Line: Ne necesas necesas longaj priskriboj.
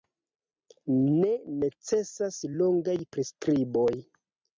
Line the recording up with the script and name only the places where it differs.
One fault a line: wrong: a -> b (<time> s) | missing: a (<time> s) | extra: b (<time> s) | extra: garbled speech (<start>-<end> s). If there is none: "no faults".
missing: necesas (2.4 s)